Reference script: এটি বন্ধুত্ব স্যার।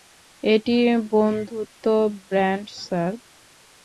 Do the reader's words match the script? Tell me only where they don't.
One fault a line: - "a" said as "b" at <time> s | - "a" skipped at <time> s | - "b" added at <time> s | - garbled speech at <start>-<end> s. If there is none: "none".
- "ব্যান্ড" added at 2.3 s